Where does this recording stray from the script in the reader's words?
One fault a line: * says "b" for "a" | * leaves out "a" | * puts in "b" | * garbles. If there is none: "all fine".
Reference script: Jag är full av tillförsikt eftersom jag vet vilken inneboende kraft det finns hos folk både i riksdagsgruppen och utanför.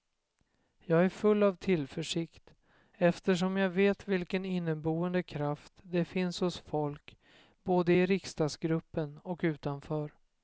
all fine